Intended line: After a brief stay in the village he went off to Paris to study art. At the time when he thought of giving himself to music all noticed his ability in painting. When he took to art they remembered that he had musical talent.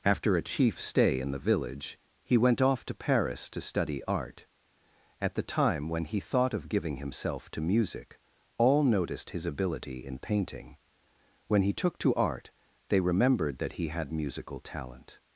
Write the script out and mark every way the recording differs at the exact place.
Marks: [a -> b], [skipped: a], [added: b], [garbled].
After a [brief -> chief] stay in the village he went off to Paris to study art. At the time when he thought of giving himself to music all noticed his ability in painting. When he took to art they remembered that he had musical talent.